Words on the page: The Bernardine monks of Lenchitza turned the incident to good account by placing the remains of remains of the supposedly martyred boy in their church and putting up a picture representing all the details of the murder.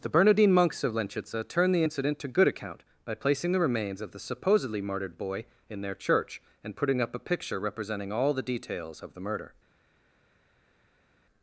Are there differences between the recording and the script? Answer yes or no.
yes